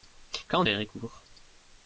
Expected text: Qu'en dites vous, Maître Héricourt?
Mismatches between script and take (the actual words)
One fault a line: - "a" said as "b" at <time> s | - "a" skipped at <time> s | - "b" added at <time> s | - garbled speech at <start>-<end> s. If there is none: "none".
- "dites vous Maître" skipped at 0.6 s